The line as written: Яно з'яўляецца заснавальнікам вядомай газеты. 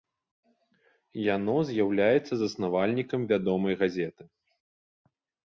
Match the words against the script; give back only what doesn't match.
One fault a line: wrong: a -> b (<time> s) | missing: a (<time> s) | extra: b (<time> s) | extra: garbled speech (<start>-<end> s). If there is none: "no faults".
no faults